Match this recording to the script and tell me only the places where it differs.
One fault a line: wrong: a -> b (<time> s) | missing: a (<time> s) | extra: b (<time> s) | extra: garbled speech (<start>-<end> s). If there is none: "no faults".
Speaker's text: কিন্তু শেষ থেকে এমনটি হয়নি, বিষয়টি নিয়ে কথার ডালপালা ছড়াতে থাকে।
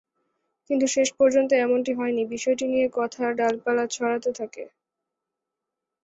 wrong: থেকে -> পর্যন্ত (1.2 s)